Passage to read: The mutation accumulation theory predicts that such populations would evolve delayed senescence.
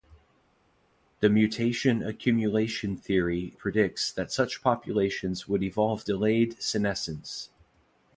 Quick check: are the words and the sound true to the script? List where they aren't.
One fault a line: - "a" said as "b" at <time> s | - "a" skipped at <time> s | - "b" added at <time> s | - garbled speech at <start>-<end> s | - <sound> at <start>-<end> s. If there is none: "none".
none